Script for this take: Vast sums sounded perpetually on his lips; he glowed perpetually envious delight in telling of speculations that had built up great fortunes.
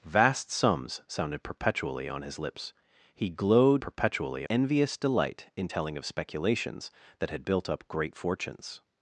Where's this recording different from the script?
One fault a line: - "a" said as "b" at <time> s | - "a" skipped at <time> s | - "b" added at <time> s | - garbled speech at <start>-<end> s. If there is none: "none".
none